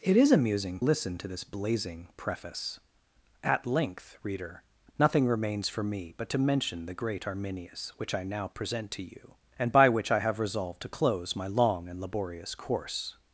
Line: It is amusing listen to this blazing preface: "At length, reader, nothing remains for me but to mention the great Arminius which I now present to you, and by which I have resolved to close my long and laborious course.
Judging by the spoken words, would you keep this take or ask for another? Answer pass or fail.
pass